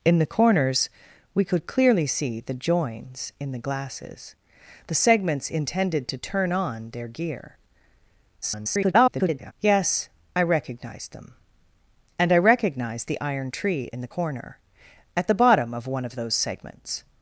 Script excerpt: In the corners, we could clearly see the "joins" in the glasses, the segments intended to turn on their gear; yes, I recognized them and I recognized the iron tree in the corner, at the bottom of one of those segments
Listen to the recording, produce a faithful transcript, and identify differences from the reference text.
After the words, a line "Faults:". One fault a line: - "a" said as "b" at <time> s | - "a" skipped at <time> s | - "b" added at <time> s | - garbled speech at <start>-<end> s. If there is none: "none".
In the corners, we could clearly see the "joins" in the glasses, the segments intended to turn on their gear; [garbled] yes, I recognized them and I recognized the iron tree in the corner, at the bottom of one of those segments
Faults:
- garbled speech at 8.4-9.5 s